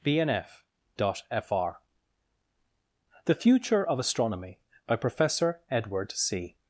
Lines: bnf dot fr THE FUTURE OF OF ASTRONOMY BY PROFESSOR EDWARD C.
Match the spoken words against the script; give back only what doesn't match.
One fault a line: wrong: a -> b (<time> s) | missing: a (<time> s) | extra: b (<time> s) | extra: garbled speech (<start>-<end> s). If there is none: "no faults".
missing: OF (4.0 s)